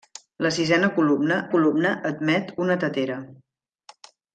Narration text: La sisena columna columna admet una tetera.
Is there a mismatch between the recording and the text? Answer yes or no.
no